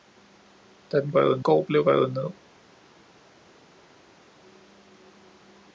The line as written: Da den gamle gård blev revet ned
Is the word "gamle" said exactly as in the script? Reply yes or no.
no